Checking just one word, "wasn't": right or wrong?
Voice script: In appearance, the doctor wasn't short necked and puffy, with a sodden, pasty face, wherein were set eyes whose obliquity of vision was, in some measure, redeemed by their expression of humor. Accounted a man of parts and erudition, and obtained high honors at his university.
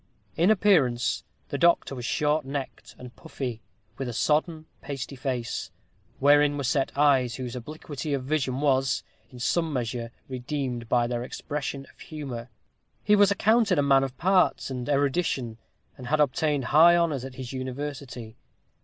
wrong